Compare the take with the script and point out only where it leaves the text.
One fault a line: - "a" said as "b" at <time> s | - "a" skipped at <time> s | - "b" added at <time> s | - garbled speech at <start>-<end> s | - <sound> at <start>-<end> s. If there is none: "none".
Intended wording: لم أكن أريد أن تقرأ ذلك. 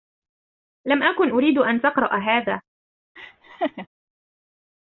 - "ذلك" said as "هذا" at 2.2 s
- laugh at 3.2-3.9 s